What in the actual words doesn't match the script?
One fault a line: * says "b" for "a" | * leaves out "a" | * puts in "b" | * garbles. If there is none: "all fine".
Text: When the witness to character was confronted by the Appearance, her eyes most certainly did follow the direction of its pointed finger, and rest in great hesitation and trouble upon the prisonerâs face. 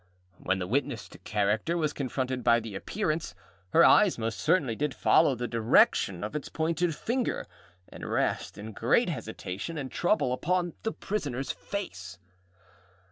all fine